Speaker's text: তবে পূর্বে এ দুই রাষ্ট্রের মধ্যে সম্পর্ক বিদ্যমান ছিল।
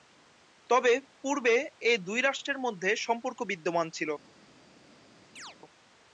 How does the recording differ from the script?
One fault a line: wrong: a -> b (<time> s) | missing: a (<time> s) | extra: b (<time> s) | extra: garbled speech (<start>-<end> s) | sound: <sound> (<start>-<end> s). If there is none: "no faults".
sound: chirp (5.4-5.6 s)